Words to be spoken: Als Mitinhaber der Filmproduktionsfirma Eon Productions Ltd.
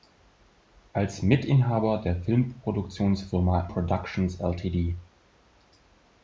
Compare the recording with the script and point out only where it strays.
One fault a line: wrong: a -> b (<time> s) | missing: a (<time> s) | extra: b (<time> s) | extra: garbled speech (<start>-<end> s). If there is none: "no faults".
missing: Eon (3.7 s)